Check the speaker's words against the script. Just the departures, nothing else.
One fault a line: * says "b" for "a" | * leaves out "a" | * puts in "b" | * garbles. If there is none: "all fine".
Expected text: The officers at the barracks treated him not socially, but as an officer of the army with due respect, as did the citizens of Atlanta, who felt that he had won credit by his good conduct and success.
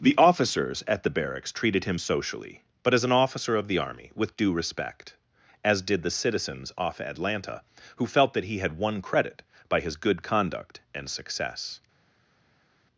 * leaves out "not"
* says "off" for "of"